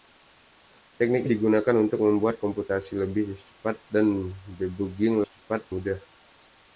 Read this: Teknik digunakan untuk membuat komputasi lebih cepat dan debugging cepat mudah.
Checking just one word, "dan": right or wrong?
right